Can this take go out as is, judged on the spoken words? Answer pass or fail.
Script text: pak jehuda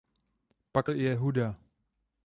pass